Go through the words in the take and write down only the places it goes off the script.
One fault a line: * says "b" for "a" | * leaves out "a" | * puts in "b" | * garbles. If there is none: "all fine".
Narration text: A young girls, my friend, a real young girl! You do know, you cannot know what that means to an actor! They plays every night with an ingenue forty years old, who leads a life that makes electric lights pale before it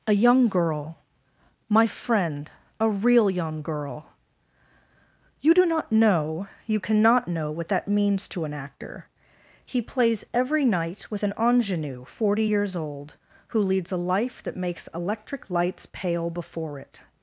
* says "girl" for "girls"
* puts in "not"
* says "He" for "They"